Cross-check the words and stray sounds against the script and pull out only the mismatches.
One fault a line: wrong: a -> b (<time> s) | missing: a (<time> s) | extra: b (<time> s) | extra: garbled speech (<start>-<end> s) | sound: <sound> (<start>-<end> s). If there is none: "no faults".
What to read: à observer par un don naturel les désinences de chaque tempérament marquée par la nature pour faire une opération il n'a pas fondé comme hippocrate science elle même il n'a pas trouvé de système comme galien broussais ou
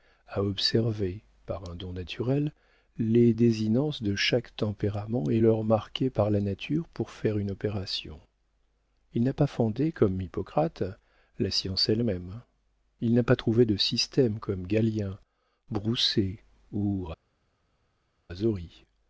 extra: et l'heure (5.3 s)
extra: la (11.4 s)